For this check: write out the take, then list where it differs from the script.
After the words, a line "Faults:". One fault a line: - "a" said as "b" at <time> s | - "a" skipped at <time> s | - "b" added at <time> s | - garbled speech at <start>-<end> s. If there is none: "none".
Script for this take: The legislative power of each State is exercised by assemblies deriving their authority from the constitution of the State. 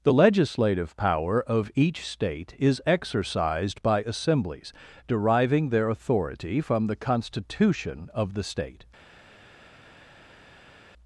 The legislative power of each State is exercised by assemblies deriving their authority from the constitution of the State.
Faults:
none